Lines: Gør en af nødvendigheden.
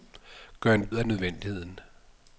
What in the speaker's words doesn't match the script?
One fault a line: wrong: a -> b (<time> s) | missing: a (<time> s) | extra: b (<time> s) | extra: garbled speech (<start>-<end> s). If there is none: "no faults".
no faults